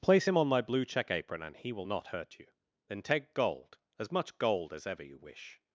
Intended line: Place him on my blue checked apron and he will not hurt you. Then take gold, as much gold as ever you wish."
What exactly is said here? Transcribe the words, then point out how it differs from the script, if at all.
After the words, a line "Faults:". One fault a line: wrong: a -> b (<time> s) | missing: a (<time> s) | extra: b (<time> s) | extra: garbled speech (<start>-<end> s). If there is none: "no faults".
Place him on my blue check apron and he will not hurt you. Then take gold, as much gold as ever you wish."
Faults:
wrong: checked -> check (0.9 s)